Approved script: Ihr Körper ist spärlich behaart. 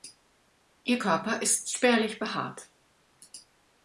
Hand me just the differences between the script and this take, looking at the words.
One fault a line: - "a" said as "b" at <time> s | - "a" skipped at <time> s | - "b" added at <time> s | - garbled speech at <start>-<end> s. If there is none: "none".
none